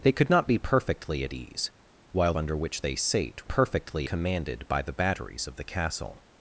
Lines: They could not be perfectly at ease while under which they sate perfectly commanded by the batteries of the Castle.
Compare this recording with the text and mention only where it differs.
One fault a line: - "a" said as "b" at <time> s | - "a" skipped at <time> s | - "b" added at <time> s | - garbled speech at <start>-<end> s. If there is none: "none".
none